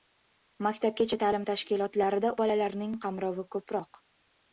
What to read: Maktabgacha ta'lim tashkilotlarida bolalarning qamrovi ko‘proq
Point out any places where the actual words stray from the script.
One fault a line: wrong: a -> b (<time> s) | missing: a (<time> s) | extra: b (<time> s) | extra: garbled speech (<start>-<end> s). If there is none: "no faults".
no faults